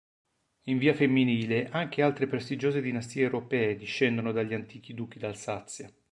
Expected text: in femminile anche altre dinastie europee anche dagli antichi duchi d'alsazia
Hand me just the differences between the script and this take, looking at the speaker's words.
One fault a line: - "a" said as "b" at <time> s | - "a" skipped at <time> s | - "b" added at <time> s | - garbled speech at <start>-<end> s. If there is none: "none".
- "via" added at 0.8 s
- "prestigiose" added at 2.2 s
- "anche" said as "discendono" at 3.8 s